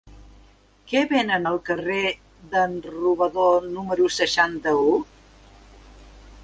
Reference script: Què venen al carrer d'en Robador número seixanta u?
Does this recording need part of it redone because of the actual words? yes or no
no